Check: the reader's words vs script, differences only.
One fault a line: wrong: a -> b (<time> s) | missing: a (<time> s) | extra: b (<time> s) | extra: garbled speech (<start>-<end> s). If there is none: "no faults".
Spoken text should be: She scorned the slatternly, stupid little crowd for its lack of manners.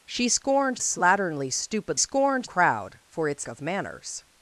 missing: the (0.8 s)
wrong: little -> scorned (2.0 s)
missing: lack (3.5 s)